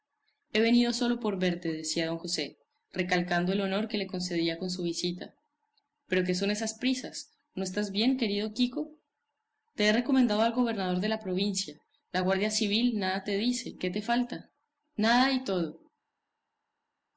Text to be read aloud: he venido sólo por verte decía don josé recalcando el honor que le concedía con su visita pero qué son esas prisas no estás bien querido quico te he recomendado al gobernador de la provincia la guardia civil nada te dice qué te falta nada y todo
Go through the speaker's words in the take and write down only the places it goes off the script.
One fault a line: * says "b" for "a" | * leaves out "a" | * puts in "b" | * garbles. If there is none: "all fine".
all fine